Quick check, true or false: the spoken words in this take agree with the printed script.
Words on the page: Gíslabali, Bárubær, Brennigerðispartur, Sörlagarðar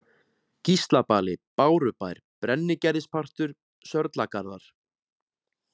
true